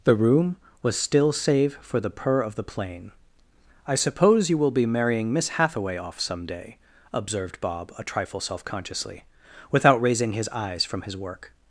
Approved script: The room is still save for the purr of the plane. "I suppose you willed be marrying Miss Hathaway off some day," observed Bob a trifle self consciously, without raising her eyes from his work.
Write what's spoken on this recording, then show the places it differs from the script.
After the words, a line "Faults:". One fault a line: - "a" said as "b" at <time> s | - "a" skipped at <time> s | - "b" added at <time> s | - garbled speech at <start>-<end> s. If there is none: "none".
The room was still save for the purr of the plane. "I suppose you will be marrying Miss Hathaway off some day," observed Bob a trifle self consciously, without raising his eyes from his work.
Faults:
- "is" said as "was" at 0.8 s
- "willed" said as "will" at 4.6 s
- "her" said as "his" at 10.3 s